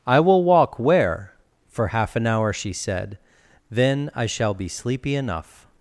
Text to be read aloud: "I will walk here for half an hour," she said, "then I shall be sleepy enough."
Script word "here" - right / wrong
wrong